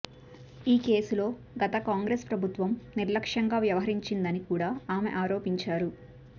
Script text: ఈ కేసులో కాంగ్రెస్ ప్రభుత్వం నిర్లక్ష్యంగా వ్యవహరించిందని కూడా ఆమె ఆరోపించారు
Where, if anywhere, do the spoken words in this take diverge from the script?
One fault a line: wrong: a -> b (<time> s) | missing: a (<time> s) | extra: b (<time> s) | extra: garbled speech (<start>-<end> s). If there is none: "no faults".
extra: గత (1.6 s)